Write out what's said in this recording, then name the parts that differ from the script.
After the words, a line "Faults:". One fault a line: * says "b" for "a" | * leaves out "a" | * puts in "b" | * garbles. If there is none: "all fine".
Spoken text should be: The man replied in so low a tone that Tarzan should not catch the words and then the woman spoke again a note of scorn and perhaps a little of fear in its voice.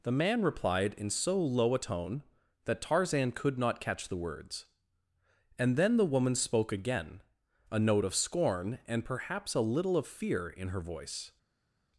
The man replied in so low a tone that Tarzan could not catch the words and then the woman spoke again a note of scorn and perhaps a little of fear in her voice.
Faults:
* says "could" for "should"
* says "her" for "its"